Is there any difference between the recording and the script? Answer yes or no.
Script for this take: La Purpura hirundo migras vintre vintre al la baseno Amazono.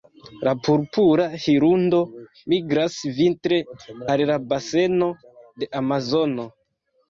yes